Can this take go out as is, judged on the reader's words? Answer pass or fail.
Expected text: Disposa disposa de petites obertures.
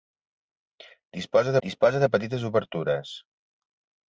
pass